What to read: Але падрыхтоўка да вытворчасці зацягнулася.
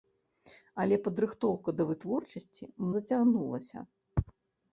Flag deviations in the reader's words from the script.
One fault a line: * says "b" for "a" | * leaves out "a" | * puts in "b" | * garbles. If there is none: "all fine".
all fine